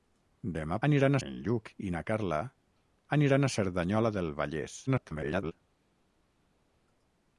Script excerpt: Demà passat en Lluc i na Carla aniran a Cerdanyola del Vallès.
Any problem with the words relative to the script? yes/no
yes